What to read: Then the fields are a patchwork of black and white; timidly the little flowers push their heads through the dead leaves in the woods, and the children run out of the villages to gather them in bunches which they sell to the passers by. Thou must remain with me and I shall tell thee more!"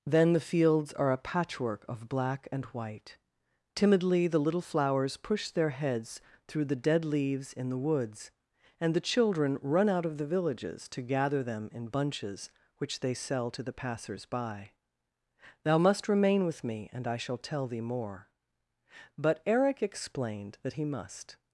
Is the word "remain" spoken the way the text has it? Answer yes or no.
yes